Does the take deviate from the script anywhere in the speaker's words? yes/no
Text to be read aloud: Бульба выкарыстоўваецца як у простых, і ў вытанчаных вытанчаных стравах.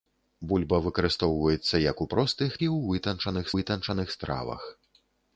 no